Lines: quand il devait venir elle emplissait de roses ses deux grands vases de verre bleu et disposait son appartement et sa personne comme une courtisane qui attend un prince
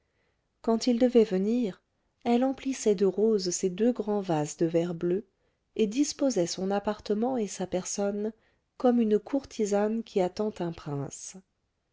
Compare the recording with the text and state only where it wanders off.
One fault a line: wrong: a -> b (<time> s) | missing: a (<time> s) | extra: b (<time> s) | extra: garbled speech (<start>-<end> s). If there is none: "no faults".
no faults